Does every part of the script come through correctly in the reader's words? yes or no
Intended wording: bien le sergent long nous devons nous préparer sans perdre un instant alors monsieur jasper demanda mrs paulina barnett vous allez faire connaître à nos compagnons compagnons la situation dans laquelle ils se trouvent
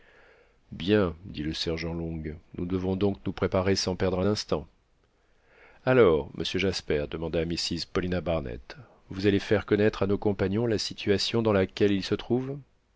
no